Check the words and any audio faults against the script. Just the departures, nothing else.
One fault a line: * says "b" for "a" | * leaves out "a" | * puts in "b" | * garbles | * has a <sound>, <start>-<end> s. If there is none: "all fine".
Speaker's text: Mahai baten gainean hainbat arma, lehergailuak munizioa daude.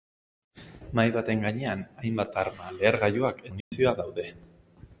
* has a dropout, 3.6-3.7 s